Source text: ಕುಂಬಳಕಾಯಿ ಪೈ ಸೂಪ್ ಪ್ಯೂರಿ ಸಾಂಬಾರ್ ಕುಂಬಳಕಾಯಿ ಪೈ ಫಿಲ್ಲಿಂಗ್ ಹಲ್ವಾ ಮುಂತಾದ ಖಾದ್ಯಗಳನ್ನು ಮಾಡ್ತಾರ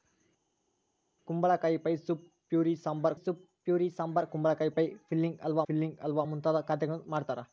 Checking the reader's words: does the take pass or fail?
fail